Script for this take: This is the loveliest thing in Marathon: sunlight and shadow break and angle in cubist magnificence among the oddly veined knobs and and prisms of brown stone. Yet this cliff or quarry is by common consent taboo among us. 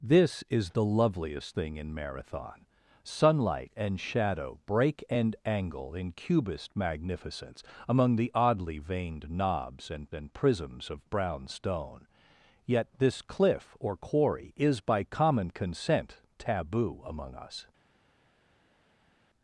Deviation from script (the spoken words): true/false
false